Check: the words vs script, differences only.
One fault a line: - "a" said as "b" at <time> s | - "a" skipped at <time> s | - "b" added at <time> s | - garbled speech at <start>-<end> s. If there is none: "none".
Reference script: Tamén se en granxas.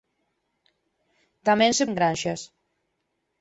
none